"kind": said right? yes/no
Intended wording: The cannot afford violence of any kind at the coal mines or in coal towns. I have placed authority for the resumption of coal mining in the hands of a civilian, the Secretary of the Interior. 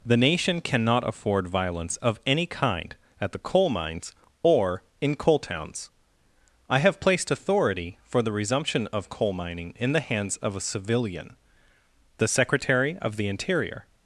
yes